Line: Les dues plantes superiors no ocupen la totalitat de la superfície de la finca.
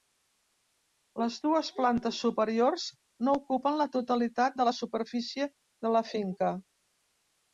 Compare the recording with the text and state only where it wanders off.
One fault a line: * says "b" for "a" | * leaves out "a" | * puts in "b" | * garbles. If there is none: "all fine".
all fine